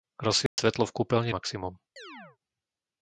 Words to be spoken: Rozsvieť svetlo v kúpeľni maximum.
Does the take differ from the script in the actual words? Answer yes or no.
no